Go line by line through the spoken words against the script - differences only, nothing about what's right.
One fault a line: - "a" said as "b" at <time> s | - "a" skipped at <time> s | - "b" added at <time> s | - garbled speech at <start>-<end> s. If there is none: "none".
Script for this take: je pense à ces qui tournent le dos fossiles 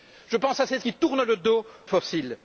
none